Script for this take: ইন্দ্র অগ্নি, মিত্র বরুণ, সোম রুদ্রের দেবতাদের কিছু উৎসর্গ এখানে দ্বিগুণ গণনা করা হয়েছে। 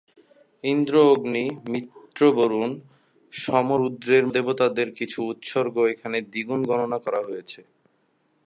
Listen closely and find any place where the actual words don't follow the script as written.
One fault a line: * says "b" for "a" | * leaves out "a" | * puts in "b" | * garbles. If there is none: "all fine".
all fine